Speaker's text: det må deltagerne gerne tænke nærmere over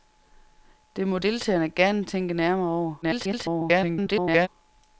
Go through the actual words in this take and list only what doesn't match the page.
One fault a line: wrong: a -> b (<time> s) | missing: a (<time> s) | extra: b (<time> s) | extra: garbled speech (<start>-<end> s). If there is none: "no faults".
extra: garbled speech (3.0-4.5 s)